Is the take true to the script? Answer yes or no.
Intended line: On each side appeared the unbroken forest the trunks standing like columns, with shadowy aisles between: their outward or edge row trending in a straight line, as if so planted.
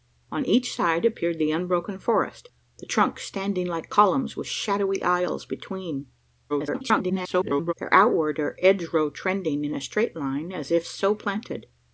no